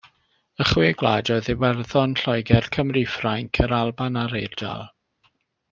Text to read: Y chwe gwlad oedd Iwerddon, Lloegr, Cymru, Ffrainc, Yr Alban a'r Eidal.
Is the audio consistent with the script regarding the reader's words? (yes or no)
yes